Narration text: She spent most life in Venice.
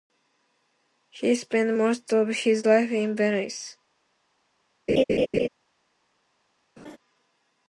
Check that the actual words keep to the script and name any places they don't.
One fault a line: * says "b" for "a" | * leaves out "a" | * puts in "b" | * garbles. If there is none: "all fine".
* says "He" for "She"
* puts in "of his"